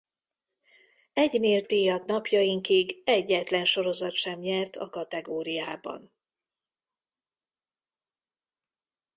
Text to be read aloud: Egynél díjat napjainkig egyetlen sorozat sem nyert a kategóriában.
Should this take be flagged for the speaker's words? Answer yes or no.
no